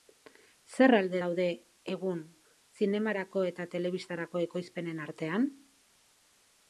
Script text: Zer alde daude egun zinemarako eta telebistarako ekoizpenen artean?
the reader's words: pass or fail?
pass